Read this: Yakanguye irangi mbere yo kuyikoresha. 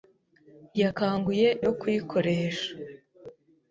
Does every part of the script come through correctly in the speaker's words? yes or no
no